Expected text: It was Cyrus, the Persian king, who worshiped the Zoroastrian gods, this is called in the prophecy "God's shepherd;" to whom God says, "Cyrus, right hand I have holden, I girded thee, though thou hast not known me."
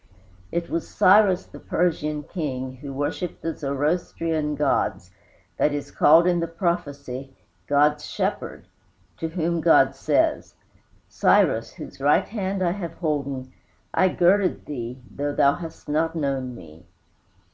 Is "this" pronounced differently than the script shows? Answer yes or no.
yes